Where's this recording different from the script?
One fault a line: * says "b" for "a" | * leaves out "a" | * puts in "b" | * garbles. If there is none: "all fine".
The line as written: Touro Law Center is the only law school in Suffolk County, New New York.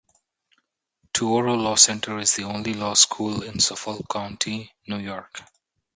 * leaves out "New"